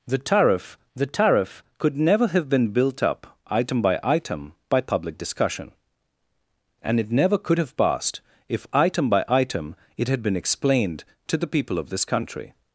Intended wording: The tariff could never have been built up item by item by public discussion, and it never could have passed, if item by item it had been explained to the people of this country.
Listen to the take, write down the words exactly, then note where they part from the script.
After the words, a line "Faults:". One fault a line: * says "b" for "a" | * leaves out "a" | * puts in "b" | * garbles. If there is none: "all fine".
The tariff the tariff could never have been built up item by item by public discussion, and it never could have passed, if item by item it had been explained to the people of this country.
Faults:
* puts in "the tariff"